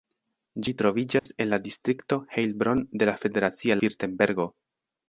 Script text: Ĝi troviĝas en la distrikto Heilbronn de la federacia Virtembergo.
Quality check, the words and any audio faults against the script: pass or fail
fail